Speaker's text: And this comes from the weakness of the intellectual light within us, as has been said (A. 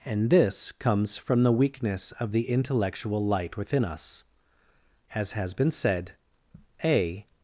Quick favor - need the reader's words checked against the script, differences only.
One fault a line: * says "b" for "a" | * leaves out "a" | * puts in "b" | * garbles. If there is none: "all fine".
all fine